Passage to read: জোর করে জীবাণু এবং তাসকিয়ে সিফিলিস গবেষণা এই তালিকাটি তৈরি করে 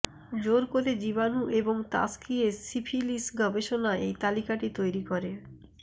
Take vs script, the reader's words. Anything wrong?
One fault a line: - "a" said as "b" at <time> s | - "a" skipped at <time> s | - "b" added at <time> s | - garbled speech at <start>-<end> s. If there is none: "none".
none